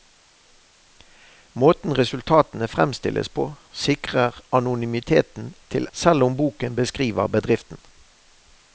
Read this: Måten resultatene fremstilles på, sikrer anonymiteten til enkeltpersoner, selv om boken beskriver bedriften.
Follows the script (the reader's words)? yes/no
no